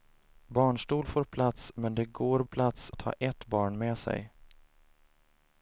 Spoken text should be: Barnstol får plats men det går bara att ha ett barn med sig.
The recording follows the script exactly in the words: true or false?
false